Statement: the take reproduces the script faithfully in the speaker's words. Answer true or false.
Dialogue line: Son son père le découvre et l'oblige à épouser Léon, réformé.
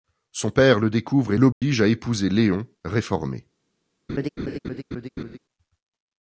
false